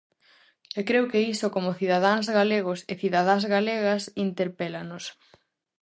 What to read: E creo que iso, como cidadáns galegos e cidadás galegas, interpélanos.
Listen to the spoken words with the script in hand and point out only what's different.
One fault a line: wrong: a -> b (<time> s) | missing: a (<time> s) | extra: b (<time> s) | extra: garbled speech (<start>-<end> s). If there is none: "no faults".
no faults